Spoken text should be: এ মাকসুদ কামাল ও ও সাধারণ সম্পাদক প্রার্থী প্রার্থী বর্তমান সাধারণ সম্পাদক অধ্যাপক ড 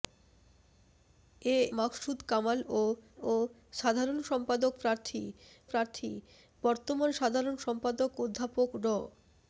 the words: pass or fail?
pass